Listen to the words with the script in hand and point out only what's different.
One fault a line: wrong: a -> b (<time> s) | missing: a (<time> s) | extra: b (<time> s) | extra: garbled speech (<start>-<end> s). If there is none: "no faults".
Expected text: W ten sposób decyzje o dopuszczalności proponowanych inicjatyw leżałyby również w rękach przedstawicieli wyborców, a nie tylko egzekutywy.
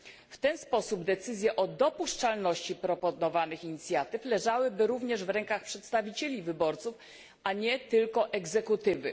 no faults